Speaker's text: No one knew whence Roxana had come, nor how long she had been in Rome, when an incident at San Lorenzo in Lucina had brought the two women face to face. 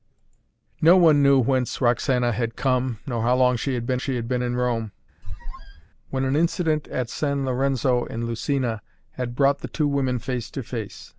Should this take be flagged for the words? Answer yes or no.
yes